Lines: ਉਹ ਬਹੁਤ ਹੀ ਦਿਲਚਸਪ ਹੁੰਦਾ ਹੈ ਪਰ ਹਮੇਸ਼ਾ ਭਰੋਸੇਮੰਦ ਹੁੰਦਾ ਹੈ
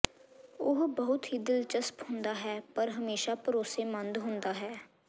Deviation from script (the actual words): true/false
false